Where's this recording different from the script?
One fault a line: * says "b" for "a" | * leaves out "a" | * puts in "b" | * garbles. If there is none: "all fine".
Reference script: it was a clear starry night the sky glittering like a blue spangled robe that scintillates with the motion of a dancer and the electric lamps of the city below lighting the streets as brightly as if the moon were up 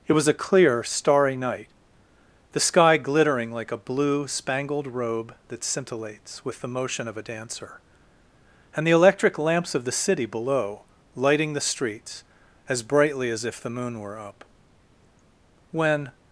* puts in "when"